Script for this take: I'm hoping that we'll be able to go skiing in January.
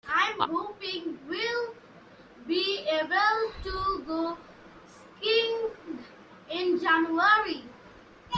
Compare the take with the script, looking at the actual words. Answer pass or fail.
fail